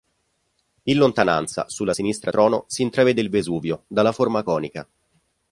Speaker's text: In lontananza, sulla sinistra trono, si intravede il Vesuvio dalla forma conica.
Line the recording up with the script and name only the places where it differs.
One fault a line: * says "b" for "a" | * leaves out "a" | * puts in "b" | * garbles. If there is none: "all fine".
all fine